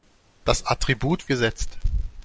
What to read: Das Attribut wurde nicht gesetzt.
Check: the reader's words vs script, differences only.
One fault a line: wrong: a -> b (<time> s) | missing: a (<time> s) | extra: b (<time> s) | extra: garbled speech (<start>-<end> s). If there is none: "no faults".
missing: wurde nicht (1.3 s)